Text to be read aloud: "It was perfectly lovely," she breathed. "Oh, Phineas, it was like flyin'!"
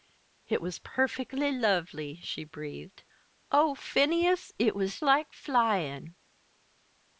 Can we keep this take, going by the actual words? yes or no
yes